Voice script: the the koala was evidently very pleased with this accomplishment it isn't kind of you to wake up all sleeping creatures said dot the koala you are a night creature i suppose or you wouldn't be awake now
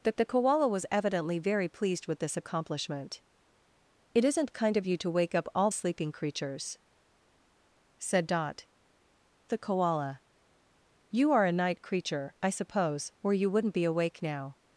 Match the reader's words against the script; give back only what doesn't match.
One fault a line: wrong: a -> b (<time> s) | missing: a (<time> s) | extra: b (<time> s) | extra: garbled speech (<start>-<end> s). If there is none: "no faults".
no faults